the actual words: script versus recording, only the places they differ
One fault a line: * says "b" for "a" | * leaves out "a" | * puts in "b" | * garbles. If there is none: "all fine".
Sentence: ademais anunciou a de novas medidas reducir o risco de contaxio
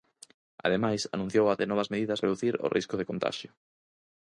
all fine